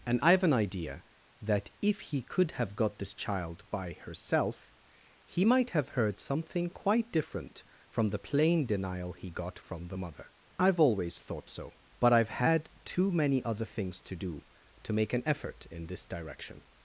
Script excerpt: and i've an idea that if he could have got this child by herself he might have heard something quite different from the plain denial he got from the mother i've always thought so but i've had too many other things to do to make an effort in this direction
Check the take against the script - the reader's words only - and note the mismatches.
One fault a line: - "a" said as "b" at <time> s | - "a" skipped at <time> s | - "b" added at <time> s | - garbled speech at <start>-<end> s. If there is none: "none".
none